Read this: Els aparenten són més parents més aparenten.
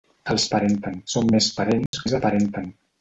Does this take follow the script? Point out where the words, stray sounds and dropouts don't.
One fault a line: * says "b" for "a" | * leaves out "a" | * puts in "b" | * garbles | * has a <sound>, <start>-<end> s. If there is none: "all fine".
* has a dropout, 1.9-1.9 s